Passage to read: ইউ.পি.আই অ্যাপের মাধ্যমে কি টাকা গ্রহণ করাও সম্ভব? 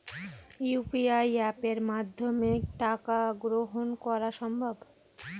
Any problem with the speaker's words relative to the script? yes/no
yes